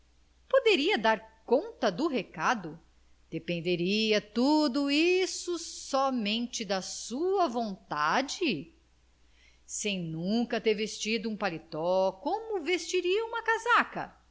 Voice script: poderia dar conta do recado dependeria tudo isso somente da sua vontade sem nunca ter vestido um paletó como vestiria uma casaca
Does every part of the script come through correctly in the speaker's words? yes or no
yes